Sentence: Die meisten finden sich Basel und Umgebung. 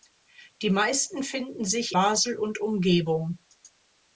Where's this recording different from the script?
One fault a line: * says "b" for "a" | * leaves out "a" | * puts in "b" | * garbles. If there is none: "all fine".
all fine